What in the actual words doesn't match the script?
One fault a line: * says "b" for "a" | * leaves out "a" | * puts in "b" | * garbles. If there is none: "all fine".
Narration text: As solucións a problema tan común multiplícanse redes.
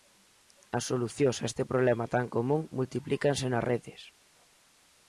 * puts in "este"
* puts in "nas"